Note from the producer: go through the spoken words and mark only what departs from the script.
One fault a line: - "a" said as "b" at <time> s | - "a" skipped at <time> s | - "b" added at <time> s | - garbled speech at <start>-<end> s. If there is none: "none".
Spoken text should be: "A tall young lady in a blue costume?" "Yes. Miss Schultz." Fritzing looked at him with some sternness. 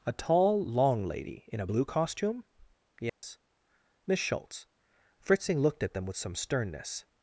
- "young" said as "long" at 0.6 s
- "him" said as "them" at 5.9 s